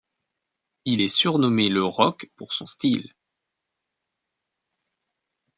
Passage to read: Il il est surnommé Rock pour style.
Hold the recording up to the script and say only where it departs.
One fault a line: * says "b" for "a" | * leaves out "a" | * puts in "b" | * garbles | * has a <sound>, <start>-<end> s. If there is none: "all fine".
* leaves out "il"
* puts in "le"
* puts in "son"